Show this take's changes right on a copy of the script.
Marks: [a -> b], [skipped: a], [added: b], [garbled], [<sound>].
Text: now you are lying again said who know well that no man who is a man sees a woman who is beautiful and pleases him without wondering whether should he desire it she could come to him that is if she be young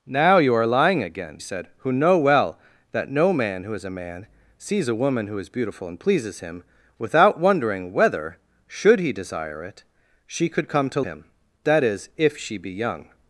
now you are lying again said who know well that no man who is a man sees a woman who is beautiful and pleases him without wondering whether should he desire it she could come to him that is if she be young